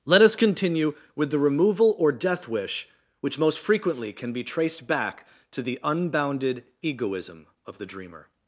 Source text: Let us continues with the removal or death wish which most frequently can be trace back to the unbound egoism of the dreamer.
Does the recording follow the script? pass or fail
fail